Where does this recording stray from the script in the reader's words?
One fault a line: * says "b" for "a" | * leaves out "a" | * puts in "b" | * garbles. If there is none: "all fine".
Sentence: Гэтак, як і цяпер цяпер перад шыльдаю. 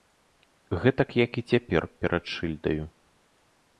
* leaves out "цяпер"